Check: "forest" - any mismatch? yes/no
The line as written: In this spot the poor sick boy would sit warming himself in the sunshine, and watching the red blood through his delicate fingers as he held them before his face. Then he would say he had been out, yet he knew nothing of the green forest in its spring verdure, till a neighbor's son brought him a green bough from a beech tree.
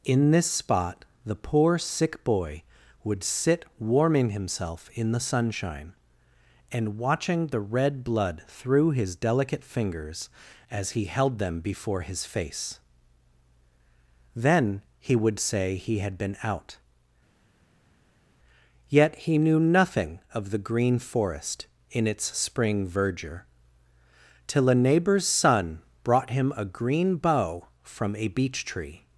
no